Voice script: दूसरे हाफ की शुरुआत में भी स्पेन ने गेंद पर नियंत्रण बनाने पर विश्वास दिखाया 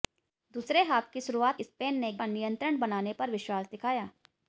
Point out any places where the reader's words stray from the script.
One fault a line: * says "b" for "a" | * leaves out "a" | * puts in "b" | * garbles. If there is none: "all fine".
* leaves out "में भी"
* leaves out "गेंद"